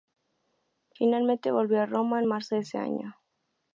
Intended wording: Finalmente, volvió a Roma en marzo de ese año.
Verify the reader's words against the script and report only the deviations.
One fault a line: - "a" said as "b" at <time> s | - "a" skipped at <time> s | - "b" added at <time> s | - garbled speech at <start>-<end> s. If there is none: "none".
none